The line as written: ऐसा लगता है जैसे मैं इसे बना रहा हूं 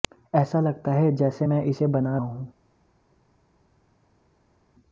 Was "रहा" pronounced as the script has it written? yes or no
no